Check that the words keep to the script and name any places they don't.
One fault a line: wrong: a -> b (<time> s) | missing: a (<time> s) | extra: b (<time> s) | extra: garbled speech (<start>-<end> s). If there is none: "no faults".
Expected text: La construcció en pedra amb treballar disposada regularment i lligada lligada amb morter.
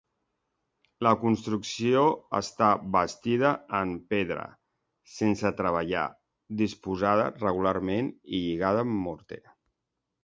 extra: està bastida (2.4 s)
wrong: amb -> sense (5.2 s)
missing: lligada (8.9 s)